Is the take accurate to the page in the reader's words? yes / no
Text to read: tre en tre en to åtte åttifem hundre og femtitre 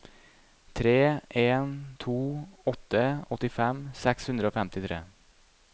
no